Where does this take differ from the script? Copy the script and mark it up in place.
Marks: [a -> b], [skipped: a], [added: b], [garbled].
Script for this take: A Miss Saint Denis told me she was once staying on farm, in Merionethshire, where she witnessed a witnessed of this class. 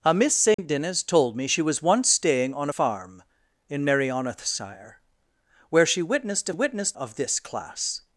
A Miss Saint Denis told me she was once staying on farm, in Merionethshire, where she witnessed a witnessed of this class.